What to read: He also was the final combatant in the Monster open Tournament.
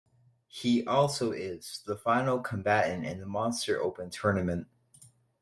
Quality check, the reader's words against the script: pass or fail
fail